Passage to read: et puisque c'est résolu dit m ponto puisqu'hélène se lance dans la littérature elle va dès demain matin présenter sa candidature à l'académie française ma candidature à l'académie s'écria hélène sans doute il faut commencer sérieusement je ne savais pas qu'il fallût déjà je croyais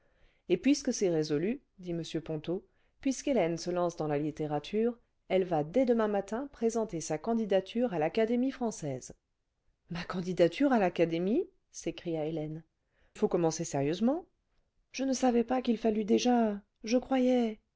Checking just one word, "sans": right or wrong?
wrong